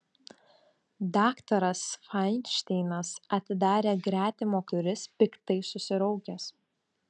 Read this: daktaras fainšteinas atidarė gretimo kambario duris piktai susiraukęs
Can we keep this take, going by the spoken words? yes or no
no